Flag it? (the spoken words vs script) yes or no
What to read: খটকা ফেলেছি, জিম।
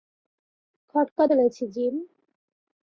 no